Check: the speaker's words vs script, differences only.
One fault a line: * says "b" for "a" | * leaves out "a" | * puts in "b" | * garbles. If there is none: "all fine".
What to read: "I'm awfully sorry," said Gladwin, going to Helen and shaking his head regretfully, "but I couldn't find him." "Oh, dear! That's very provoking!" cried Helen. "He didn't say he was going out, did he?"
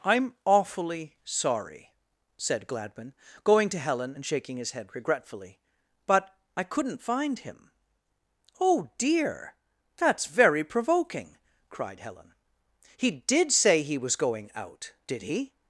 * says "did" for "didn't"